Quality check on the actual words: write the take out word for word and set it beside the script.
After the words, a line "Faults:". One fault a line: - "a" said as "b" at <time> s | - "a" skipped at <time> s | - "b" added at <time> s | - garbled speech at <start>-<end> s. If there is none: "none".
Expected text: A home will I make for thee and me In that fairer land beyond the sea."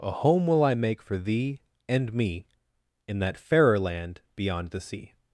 A home will I make for thee and me In that fairer land beyond the sea."
Faults:
none